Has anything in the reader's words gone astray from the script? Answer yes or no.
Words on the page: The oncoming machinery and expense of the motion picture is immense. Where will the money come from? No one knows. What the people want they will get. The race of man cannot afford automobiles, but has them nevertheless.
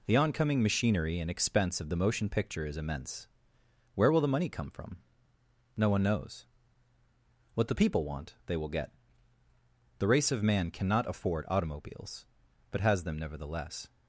no